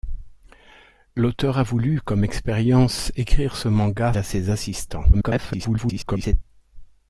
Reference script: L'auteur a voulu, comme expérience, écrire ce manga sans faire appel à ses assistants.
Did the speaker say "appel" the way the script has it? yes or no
no